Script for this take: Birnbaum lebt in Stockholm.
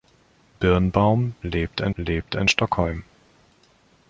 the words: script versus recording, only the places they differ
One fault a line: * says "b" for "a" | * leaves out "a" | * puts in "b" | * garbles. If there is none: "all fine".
* puts in "lebt in"